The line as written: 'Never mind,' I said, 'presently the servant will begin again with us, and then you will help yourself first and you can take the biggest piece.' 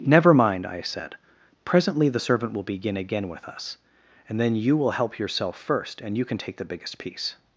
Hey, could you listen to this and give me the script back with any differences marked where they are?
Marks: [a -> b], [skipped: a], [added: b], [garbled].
'Never mind,' I said, 'presently the servant will begin again with us, and then you will help yourself first and you can take the biggest piece.'